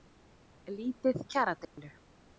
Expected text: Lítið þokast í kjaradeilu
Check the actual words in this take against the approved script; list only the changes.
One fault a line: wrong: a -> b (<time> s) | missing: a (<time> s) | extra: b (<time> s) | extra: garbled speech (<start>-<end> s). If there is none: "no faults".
missing: þokast (1.2 s)